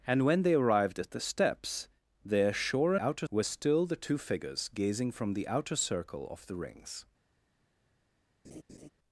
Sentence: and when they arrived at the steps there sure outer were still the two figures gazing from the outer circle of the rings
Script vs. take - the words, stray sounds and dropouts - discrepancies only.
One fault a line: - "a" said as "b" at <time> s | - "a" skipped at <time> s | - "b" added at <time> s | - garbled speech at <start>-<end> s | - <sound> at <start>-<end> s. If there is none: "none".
- laugh at 8.4-8.9 s